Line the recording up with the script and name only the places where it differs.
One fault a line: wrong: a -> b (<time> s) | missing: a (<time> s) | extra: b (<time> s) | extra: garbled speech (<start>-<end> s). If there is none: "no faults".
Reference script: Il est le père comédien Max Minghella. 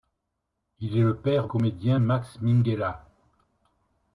no faults